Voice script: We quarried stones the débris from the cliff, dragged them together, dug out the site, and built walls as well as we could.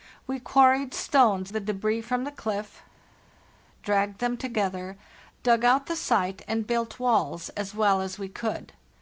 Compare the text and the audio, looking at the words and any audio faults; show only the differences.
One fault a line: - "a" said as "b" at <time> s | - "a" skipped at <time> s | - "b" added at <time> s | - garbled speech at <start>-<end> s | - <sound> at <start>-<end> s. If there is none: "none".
none